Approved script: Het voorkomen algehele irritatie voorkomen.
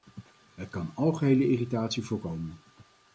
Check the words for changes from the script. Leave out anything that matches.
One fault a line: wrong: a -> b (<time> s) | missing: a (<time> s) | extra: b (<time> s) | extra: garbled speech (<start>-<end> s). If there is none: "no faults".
wrong: voorkomen -> kan (0.7 s)